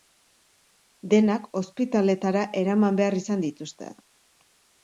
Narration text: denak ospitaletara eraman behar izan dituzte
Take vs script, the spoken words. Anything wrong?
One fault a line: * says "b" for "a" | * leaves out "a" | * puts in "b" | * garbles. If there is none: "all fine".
all fine